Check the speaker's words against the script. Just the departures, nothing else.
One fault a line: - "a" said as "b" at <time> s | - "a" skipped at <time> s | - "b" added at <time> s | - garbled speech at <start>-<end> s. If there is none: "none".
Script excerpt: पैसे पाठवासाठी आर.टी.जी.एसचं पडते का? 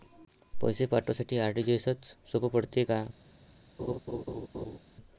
- "सोप" added at 2.3 s